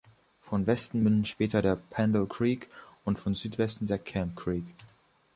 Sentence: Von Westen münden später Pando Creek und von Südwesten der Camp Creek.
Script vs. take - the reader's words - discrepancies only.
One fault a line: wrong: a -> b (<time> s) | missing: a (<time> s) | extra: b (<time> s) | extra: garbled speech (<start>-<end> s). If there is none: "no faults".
extra: der (1.6 s)